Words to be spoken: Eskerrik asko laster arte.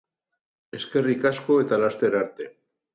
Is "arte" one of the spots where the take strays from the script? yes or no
no